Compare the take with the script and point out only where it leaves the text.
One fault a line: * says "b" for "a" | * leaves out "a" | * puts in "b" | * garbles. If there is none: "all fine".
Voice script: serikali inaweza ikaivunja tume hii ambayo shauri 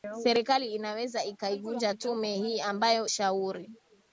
all fine